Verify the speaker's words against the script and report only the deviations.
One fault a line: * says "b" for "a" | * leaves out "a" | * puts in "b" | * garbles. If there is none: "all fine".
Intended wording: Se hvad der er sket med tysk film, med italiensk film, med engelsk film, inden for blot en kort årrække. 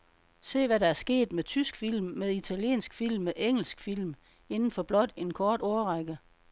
all fine